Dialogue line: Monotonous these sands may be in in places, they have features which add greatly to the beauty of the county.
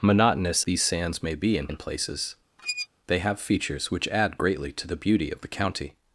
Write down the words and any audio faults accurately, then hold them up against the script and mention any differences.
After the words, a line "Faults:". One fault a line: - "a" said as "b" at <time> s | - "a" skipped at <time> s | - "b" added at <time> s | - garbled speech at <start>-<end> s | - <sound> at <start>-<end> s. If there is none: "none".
Monotonous these sands may be in in places, they have features which add greatly to the beauty of the county.
Faults:
- squeak at 2.6-2.9 s